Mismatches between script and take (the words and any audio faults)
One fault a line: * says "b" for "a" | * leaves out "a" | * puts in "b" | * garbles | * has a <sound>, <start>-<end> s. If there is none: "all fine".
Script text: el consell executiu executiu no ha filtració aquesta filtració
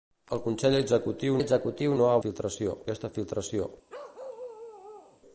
* has a bark, 3.9-5.2 s